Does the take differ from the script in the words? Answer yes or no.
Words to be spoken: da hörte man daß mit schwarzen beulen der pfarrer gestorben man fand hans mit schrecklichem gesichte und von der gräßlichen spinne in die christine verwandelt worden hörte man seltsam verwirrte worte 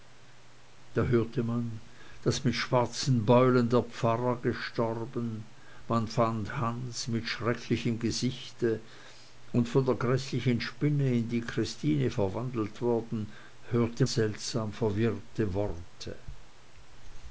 yes